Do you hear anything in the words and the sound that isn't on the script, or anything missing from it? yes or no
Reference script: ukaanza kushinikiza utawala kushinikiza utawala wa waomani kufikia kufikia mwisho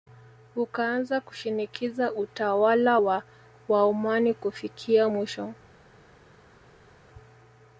yes